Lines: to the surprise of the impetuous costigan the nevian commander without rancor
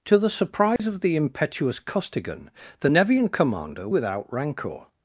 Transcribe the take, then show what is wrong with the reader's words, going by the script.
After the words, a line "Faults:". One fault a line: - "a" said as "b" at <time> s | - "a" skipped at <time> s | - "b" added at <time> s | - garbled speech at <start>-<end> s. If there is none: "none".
to the surprise of the impetuous costigan the nevian commander without rancor
Faults:
none